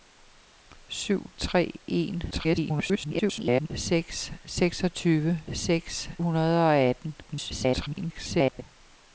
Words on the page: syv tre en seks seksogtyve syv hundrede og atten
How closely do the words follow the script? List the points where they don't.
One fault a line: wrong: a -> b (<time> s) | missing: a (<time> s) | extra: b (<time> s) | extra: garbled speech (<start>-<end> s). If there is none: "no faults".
extra: garbled speech (2.3-3.7 s)
wrong: syv -> seks (5.5 s)
extra: garbled speech (7.2-8.6 s)